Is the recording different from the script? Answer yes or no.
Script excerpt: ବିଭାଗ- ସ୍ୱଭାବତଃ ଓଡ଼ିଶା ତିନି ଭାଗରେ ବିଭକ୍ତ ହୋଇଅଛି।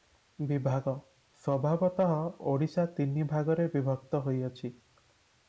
no